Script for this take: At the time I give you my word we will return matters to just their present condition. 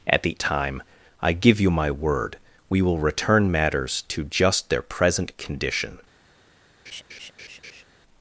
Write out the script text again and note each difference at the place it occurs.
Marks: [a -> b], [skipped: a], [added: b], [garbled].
At the time I give you my word we will return matters to just their present condition.